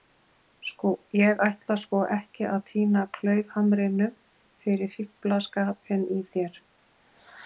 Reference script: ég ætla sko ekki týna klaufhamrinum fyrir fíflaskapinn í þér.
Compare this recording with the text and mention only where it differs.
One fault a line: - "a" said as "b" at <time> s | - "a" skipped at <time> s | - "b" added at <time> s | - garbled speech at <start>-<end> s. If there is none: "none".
- "að" added at 2.5 s